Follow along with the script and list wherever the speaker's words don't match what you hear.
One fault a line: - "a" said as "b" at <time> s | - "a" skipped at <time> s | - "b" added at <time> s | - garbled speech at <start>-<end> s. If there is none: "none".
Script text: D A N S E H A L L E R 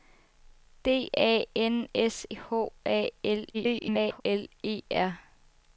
- "E" skipped at 2.2 s
- garbled speech at 3.5-4.2 s